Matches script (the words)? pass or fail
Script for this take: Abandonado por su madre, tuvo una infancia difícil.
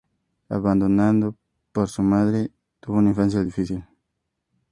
pass